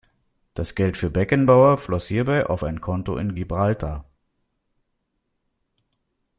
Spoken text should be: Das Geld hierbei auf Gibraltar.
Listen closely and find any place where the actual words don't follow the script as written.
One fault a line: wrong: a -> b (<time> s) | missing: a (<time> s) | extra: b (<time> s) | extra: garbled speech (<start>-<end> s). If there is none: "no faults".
extra: für Beckenbauer floss (1.0 s)
extra: ein Konto in (2.6 s)